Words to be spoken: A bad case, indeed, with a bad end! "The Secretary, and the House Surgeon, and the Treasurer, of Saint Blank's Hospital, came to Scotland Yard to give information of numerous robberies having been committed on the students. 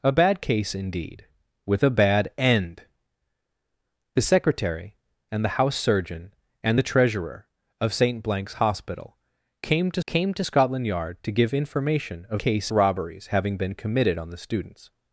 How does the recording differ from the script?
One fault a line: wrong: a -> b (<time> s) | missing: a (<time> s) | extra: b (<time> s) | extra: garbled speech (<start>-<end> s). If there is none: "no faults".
extra: came to (10.0 s)
wrong: numerous -> case (12.4 s)